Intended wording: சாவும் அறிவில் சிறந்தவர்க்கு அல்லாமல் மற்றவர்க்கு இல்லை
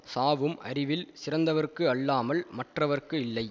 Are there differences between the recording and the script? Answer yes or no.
no